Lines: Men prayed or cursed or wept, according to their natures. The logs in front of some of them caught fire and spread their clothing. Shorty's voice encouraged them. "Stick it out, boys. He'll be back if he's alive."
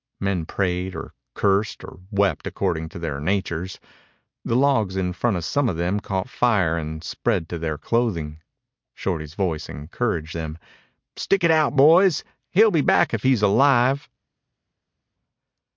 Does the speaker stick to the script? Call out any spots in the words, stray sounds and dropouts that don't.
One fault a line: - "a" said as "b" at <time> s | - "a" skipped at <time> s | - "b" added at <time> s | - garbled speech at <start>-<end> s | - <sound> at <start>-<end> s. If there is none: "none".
- "to" added at 7.5 s